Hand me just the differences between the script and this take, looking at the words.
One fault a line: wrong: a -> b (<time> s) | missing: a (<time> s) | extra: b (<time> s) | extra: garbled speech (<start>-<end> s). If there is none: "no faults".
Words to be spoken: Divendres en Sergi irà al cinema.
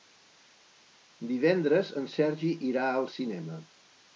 no faults